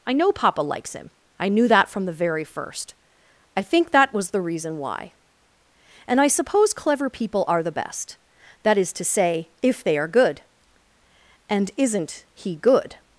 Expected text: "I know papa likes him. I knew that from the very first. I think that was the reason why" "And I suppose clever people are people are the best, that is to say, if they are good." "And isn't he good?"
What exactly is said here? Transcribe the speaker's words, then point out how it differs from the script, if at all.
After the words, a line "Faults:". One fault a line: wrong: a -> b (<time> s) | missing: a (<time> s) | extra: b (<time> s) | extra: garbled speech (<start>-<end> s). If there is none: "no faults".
"I know papa likes him. I knew that from the very first. I think that was the reason why" "And I suppose clever people are the best, that is to say, if they are good." "And isn't he good?"
Faults:
missing: people are (7.6 s)